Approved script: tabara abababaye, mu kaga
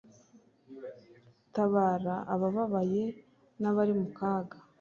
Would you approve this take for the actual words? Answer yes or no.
no